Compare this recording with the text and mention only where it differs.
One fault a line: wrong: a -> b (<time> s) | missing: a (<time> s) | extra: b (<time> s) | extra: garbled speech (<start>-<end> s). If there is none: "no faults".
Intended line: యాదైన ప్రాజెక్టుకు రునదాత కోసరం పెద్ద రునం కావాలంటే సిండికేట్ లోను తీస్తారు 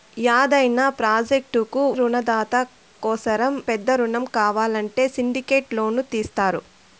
no faults